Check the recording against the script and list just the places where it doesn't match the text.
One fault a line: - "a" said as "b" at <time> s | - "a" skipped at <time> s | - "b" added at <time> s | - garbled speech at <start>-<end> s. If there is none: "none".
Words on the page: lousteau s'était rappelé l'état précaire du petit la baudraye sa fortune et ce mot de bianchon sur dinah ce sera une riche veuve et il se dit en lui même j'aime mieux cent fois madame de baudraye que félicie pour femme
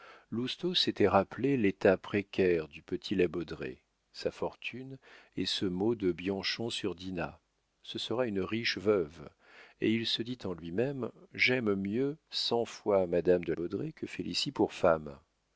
none